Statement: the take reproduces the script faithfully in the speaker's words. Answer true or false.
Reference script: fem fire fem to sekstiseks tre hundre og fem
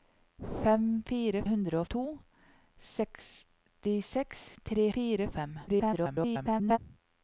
false